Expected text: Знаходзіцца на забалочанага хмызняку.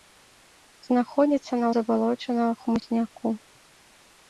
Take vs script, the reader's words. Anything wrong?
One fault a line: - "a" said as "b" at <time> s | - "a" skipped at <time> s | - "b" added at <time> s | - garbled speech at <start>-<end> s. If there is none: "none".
none